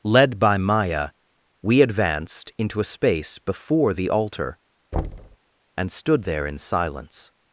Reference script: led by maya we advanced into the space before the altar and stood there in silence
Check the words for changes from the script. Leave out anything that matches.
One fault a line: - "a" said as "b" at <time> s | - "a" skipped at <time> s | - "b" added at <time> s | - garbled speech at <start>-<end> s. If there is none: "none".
- "the" said as "a" at 2.8 s